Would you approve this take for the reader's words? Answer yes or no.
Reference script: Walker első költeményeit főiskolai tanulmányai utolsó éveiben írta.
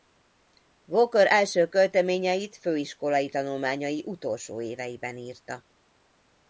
yes